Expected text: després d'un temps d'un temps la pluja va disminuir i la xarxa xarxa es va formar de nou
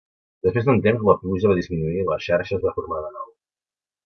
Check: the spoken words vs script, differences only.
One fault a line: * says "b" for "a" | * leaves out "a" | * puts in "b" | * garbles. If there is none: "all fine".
* leaves out "d'un temps"
* leaves out "xarxa"